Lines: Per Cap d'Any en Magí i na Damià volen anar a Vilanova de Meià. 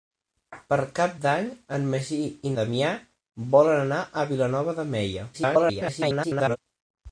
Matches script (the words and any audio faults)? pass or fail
fail